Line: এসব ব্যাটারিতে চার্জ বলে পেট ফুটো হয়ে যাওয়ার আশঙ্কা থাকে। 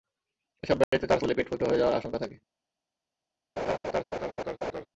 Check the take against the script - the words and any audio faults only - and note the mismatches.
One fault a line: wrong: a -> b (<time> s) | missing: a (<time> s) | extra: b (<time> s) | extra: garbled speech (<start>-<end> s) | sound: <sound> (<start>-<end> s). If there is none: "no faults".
sound: dropout (0.8-0.9 s)
sound: laugh (3.6-4.9 s)